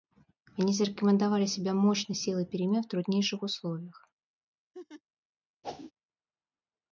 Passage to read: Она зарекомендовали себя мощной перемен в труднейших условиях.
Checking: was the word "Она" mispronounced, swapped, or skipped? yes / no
yes